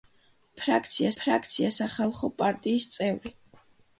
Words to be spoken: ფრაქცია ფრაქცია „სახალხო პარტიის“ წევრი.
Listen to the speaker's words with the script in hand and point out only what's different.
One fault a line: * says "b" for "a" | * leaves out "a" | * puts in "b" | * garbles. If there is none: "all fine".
all fine